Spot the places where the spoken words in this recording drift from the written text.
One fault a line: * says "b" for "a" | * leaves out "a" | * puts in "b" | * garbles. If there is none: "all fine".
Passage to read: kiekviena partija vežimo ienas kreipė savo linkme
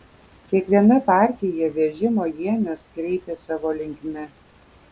all fine